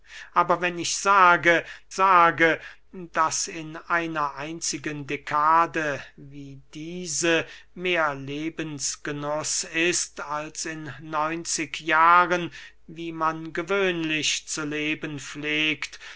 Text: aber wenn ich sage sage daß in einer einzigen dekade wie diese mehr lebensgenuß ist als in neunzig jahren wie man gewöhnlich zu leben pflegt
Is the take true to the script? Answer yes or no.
yes